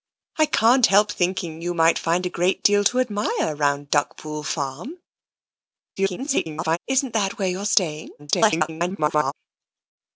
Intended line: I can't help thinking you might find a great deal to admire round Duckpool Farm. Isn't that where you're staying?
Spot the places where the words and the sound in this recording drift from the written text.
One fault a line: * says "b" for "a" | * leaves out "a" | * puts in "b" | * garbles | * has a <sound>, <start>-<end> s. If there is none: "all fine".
* garbles
* garbles